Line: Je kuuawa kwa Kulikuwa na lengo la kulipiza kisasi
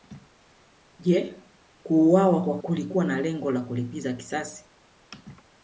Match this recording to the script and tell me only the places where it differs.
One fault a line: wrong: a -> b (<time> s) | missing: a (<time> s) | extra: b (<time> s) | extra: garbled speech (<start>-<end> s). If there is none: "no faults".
no faults